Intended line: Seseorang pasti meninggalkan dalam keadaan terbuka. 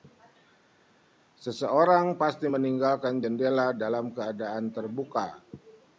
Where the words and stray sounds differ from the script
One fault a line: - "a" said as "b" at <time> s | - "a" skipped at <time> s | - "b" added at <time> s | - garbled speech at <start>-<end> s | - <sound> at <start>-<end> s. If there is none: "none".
- "jendela" added at 3.2 s